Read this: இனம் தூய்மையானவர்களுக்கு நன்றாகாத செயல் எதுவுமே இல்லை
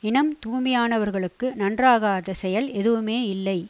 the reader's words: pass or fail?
pass